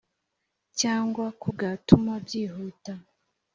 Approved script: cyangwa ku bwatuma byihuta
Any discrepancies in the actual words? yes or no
no